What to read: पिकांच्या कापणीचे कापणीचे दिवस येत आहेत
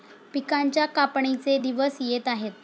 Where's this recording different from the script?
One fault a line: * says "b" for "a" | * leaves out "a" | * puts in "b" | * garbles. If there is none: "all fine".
* leaves out "कापणीचे"